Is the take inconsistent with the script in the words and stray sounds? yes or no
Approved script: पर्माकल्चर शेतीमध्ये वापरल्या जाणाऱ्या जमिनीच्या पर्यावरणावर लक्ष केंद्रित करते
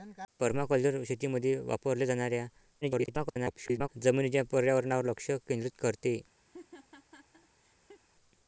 yes